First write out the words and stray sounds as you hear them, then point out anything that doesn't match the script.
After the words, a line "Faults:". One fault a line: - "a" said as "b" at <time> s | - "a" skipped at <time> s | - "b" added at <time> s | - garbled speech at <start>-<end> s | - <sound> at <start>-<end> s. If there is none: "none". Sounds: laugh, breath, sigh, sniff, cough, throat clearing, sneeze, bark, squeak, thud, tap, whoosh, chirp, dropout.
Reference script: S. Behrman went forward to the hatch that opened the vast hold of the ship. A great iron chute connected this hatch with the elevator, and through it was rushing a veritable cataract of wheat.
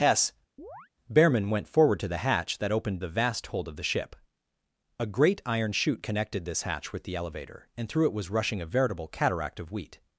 S. Behrman went forward to the hatch that opened the vast hold of the ship. A great iron chute connected this hatch with the elevator, and through it was rushing a veritable cataract of wheat.
Faults:
- chirp at 0.6-0.9 s